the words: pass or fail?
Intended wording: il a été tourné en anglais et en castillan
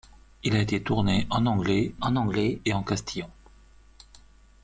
fail